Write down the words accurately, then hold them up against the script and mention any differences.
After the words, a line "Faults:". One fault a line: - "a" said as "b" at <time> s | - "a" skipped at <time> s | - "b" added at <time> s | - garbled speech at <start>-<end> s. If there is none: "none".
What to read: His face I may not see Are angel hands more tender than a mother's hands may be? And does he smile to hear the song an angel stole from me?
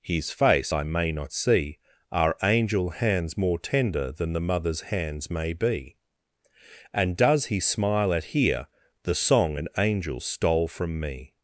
His face I may not see Are angel hands more tender than the mother's hands may be? And does he smile at hear the song an angel stole from me?
Faults:
- "a" said as "the" at 4.3 s
- "to" said as "at" at 8.1 s